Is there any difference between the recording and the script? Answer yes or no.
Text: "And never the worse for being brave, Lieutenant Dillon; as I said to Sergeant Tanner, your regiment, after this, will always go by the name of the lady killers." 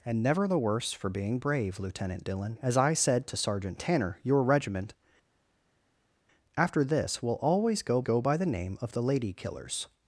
yes